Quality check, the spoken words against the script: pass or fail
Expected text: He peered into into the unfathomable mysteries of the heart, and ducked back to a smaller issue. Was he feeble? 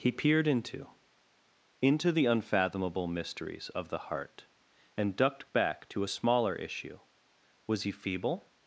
pass